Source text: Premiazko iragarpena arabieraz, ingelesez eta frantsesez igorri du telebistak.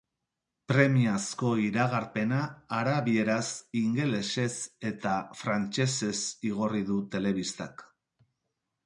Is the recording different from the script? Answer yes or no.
no